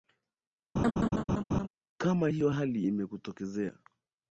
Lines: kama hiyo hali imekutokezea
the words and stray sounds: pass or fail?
fail